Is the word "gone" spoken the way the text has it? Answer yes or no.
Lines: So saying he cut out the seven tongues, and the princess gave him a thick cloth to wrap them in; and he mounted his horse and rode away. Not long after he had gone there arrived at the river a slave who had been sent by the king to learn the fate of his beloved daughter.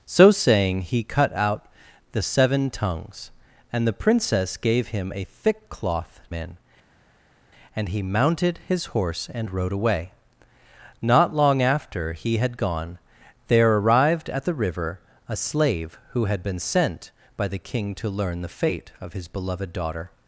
yes